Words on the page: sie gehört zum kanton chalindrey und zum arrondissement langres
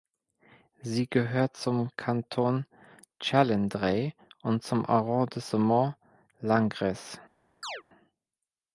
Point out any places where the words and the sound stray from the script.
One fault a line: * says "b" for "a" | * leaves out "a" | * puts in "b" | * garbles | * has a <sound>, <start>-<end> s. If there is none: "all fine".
* has a chirp, 7.6-7.8 s